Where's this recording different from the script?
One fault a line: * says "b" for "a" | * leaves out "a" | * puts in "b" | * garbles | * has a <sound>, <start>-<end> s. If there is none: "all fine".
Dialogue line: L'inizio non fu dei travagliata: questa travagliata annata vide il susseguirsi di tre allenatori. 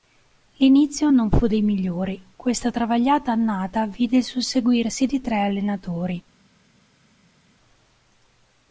* says "migliori" for "travagliata"